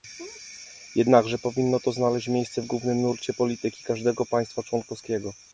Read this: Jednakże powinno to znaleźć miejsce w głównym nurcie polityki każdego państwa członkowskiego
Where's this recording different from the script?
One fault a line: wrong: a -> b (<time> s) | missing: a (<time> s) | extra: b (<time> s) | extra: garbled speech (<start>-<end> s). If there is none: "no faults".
no faults